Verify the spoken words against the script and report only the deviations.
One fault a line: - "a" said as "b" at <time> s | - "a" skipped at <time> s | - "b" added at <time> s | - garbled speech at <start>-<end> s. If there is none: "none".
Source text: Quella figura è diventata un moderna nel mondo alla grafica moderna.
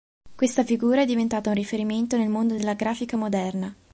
- "Quella" said as "Questa" at 0.3 s
- "moderna" said as "riferimento" at 1.6 s
- "alla" said as "della" at 2.5 s